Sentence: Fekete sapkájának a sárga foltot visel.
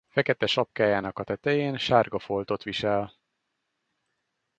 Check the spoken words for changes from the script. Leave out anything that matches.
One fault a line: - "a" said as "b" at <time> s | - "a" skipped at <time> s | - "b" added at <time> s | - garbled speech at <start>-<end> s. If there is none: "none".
- "tetején" added at 1.2 s